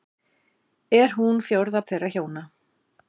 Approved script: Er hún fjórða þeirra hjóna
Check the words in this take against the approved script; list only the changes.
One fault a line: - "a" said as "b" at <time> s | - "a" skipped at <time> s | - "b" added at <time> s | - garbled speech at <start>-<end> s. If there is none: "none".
none